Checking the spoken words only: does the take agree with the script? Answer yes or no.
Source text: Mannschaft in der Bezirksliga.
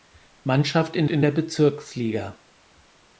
no